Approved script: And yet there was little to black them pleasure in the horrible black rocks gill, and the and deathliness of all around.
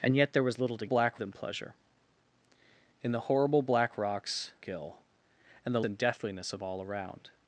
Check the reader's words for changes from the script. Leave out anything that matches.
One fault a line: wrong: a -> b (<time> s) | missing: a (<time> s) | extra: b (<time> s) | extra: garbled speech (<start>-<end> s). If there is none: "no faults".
no faults